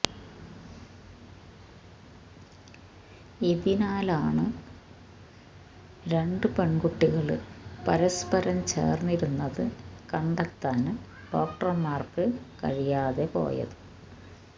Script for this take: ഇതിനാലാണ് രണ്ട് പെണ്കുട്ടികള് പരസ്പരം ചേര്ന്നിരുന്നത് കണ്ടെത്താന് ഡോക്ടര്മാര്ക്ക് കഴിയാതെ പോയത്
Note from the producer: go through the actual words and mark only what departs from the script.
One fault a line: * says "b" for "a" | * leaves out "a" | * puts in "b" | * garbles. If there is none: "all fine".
all fine